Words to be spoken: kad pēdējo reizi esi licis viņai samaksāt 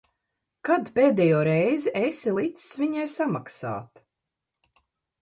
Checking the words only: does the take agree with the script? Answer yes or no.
yes